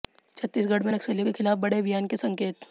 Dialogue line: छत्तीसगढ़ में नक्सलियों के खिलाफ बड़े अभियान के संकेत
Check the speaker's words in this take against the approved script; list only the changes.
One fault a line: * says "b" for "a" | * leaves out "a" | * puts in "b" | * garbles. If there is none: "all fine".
all fine